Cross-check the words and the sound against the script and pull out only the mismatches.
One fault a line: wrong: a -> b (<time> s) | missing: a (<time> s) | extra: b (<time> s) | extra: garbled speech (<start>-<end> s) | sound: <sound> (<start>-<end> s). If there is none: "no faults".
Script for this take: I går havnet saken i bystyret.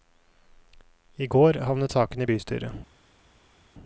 no faults